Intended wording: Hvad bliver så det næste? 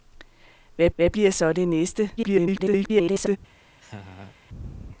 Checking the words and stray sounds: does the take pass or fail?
fail